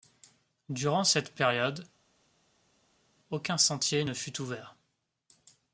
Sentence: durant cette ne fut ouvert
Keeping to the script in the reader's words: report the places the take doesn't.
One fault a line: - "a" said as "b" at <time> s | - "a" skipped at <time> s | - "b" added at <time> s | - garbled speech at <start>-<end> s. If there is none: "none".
- "période aucun sentier" added at 1.3 s